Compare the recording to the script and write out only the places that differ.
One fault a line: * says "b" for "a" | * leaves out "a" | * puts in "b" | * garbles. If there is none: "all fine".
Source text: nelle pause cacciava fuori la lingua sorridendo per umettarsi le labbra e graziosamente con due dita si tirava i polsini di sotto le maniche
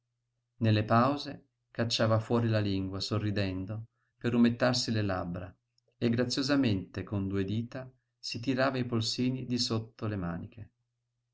all fine